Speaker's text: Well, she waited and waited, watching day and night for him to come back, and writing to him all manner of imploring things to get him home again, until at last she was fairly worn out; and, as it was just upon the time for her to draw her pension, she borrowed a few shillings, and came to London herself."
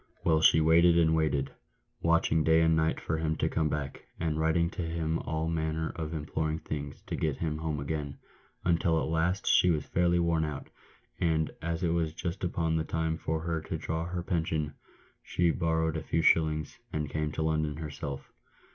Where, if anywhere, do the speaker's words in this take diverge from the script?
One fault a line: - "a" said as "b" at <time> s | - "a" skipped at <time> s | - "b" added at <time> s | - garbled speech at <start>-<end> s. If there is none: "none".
none